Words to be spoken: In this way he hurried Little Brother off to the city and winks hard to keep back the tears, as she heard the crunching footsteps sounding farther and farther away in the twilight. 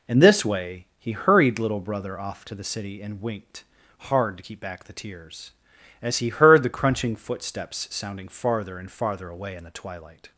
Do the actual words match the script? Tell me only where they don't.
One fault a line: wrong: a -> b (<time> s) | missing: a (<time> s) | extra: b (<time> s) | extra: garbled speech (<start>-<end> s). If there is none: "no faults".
wrong: winks -> winked (3.2 s)
wrong: she -> he (6.2 s)